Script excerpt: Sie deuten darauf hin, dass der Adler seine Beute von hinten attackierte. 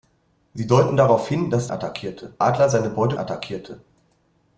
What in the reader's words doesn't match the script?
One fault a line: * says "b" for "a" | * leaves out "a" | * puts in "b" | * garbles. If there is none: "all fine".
* says "attackierte" for "der"
* leaves out "von hinten"